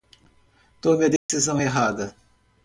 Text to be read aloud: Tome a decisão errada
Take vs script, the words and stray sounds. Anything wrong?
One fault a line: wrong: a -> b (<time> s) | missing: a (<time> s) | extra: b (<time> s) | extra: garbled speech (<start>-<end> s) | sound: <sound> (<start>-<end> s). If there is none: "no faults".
sound: dropout (1.2-1.3 s)